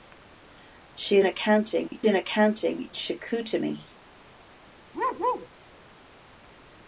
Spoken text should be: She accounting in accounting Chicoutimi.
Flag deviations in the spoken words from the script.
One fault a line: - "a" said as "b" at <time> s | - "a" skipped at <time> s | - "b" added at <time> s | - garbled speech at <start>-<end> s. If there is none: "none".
none